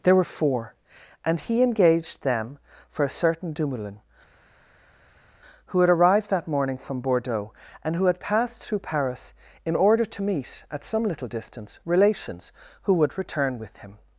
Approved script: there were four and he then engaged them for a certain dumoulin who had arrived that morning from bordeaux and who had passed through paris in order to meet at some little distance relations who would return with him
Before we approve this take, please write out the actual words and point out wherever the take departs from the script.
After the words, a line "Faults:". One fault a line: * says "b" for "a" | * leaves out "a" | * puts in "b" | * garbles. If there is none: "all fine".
there were four and he engaged them for a certain dumoulin who had arrived that morning from bordeaux and who had passed through paris in order to meet at some little distance relations who would return with him
Faults:
* leaves out "then"